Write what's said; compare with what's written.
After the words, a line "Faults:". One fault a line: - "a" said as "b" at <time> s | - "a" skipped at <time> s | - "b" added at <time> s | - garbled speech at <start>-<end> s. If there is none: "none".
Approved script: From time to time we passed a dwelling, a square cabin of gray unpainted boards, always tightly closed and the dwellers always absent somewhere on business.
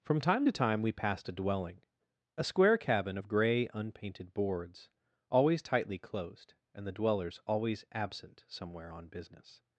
From time to time we passed a dwelling, a square cabin of gray unpainted boards, always tightly closed and the dwellers always absent somewhere on business.
Faults:
none